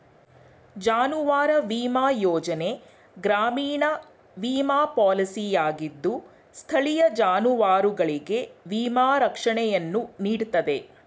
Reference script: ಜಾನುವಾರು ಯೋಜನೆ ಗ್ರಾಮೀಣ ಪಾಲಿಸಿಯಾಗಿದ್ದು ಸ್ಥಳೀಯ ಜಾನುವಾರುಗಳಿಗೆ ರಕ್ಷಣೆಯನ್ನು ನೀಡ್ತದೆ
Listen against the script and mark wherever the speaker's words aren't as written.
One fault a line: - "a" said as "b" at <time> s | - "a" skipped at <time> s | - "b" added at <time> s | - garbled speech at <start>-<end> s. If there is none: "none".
- "ವಿಮಾ" added at 1.7 s
- "ವಿಮಾ" added at 4.4 s
- "ವಿಮಾ" added at 8.7 s